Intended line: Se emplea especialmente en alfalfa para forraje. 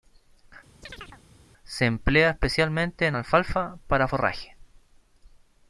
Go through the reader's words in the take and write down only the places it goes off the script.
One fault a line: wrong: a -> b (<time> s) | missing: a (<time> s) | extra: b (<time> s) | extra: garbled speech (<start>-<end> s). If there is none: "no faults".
no faults